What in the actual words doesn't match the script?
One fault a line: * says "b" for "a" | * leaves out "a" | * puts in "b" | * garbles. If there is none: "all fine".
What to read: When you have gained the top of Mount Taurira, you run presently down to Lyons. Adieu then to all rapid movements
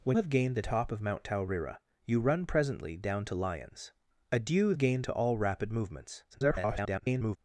* leaves out "you"
* says "gained" for "then"
* garbles